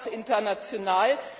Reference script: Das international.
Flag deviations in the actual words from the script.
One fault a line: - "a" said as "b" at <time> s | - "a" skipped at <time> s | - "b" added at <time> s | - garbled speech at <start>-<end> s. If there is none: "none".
none